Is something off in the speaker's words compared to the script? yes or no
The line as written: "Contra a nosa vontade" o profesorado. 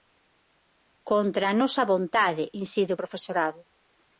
yes